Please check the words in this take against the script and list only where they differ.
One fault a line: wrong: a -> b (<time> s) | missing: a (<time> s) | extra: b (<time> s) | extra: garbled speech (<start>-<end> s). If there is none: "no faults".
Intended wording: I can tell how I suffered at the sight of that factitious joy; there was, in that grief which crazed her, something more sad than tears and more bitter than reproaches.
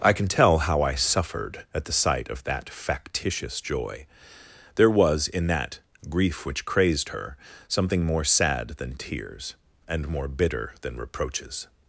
no faults